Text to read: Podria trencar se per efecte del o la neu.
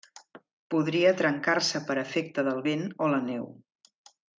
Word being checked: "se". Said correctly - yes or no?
yes